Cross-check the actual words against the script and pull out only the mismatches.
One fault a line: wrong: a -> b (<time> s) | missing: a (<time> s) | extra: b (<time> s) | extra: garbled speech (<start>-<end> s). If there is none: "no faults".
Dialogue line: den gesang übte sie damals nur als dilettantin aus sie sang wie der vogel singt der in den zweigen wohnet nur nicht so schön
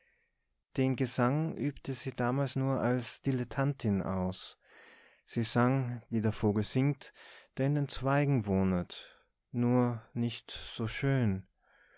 no faults